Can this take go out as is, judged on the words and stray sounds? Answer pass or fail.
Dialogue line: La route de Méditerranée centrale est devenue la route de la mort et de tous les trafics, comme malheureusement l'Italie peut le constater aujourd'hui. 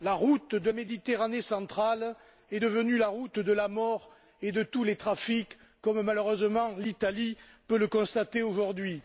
pass